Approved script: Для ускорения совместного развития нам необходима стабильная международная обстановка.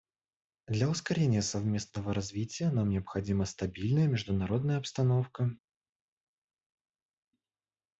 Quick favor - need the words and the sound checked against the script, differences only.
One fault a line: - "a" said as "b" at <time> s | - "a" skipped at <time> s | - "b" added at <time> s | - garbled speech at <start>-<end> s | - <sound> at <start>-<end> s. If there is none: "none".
none